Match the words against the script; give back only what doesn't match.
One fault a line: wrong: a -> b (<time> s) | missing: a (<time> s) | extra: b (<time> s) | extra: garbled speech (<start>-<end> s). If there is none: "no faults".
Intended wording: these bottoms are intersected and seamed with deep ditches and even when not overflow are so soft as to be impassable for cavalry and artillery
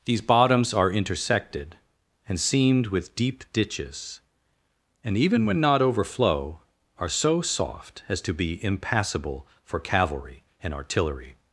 no faults